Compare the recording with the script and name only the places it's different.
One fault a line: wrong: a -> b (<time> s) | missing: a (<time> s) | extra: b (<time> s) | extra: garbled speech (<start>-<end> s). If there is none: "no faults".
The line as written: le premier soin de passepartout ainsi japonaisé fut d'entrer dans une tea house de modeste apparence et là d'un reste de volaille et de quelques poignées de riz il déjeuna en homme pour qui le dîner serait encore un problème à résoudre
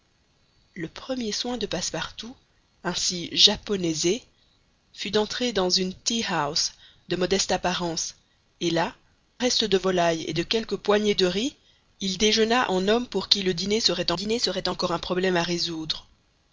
missing: d'un (8.9 s)
extra: dîner serait (14.1 s)